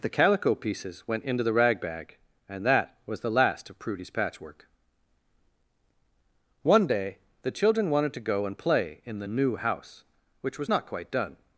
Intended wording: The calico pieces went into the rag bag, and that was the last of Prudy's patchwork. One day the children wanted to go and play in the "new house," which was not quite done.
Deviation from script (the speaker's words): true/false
false